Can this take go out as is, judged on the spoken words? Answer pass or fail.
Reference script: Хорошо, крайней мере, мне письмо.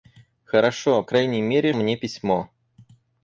pass